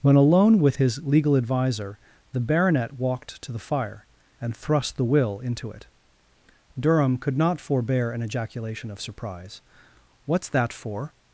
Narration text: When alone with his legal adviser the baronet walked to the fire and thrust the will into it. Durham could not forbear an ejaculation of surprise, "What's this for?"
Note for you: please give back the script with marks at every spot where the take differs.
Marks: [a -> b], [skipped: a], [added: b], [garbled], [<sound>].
When alone with his legal adviser the baronet walked to the fire and thrust the will into it. Durham could not forbear an ejaculation of surprise, "What's [this -> that] for?"